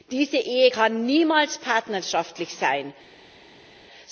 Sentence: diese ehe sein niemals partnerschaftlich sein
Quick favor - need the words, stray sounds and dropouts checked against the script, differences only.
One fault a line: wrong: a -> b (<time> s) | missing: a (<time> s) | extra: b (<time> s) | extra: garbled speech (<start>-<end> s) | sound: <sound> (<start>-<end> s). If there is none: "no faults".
wrong: sein -> kann (0.6 s)